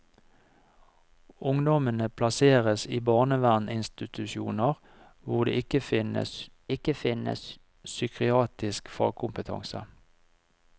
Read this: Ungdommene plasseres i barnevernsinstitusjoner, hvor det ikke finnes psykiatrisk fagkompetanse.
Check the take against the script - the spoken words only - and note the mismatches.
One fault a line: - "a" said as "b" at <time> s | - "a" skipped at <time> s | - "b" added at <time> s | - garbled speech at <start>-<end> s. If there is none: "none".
- "ikke finnes" added at 6.7 s